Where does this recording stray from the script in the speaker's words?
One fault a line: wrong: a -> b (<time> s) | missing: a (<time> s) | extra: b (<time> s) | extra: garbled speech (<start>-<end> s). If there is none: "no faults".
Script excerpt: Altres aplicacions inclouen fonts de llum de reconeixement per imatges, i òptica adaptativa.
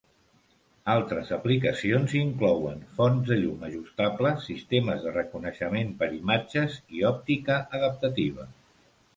extra: ajustables sistemes (3.7 s)